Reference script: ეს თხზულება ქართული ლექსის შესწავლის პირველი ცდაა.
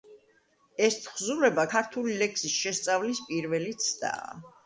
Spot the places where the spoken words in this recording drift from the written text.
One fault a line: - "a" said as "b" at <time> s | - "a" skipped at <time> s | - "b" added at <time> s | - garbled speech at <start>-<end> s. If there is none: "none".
none